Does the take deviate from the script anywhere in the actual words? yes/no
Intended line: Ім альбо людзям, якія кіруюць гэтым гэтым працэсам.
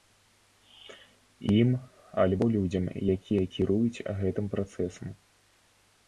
yes